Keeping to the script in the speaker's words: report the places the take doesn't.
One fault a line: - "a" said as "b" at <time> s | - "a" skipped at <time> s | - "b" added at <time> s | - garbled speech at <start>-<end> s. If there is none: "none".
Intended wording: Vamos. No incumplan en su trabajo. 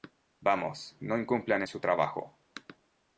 none